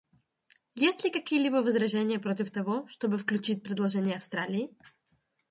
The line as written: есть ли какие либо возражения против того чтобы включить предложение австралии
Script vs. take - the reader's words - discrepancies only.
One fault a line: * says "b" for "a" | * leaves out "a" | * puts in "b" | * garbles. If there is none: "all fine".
all fine